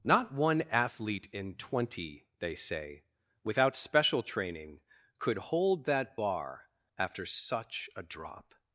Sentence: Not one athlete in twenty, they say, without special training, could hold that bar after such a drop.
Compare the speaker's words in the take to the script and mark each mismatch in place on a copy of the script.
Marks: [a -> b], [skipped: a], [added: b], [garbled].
Not one athlete in twenty, they say, without special training, could hold that bar after such a drop.